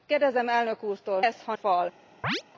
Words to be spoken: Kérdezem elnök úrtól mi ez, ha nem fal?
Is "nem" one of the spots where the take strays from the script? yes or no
yes